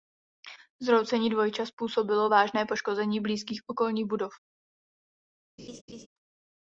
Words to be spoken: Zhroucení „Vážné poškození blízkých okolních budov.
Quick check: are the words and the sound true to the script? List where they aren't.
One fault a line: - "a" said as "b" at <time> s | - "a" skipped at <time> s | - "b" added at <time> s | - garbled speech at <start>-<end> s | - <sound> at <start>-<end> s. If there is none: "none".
- "Dvojčat způsobilo" added at 1.3 s
- laugh at 5.6-6.1 s